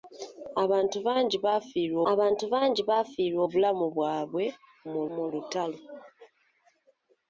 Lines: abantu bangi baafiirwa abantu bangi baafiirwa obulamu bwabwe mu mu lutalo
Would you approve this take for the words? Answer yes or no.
yes